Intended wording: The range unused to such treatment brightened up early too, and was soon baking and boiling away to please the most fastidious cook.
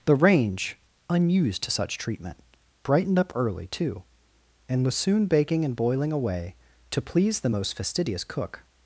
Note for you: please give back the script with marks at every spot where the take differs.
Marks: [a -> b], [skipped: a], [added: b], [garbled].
The range unused to such treatment brightened up early too, and was soon baking and boiling away to please the most fastidious cook.